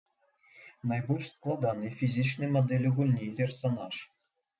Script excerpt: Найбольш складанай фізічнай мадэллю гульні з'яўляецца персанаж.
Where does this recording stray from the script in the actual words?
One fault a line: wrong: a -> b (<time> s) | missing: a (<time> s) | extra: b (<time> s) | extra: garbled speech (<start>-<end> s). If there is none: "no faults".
missing: з'яўляецца (3.3 s)